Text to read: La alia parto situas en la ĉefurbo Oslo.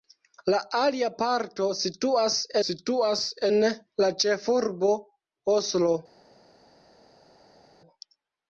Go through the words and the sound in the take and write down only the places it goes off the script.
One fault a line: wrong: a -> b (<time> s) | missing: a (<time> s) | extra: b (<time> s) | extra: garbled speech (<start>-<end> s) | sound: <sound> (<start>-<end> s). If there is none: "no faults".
extra: situas (2.7 s)